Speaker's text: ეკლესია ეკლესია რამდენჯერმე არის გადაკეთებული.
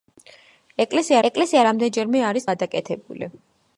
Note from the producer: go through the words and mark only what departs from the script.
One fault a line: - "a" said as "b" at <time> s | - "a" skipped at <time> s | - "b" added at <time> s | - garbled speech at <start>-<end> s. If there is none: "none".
none